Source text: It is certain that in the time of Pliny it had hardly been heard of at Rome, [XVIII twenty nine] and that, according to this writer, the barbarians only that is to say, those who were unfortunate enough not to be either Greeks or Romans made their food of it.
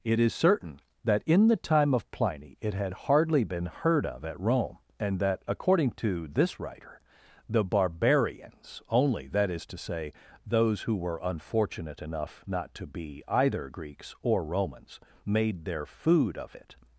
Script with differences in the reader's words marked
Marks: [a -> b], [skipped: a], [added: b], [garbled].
It is certain that in the time of Pliny it had hardly been heard of at Rome, [skipped: [XVIII twenty nine]] and that, according to this writer, the barbarians only that is to say, those who were unfortunate enough not to be either Greeks or Romans made their food of it.